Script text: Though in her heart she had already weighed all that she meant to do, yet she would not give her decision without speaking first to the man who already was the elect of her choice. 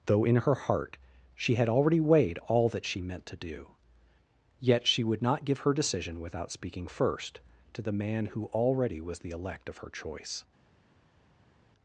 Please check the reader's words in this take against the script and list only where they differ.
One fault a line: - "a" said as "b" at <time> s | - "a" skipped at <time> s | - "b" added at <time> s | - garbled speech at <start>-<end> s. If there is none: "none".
none